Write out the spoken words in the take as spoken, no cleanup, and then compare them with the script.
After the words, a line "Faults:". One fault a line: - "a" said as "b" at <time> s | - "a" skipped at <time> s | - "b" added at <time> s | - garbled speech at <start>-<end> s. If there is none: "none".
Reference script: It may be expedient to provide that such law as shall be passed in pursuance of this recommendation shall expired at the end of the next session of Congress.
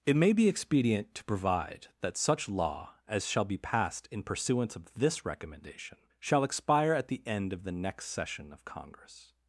It may be expedient to provide that such law as shall be passed in pursuance of this recommendation shall expire at the end of the next session of Congress.
Faults:
- "expired" said as "expire" at 6.4 s